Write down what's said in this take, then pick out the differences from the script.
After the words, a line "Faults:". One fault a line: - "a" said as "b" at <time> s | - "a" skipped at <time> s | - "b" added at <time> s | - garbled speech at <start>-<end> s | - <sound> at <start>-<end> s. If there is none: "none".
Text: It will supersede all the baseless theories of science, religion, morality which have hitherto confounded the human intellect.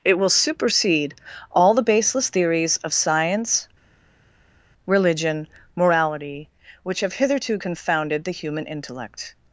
It will supersede all the baseless theories of science, religion, morality which have hitherto confounded the human intellect.
Faults:
none